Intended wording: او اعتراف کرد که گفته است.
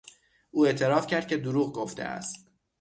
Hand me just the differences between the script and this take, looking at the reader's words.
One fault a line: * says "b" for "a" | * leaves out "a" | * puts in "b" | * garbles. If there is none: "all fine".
* puts in "دروغ"